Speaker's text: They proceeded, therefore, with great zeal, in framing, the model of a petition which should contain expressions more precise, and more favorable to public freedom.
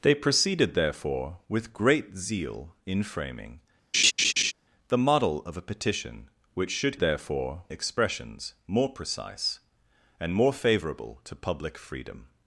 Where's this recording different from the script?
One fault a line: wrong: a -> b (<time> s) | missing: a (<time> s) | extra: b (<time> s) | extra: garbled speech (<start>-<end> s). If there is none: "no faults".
wrong: contain -> therefore (7.0 s)